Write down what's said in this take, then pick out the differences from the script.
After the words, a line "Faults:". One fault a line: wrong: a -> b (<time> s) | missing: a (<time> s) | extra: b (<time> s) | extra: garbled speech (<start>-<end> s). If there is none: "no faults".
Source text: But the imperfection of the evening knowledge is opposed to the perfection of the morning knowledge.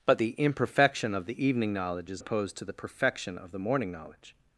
But the imperfection of the evening knowledge is opposed to the perfection of the morning knowledge.
Faults:
no faults